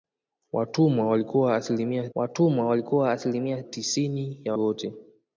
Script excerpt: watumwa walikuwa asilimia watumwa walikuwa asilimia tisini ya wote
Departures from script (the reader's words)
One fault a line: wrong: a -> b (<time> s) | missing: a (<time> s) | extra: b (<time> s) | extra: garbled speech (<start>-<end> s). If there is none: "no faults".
no faults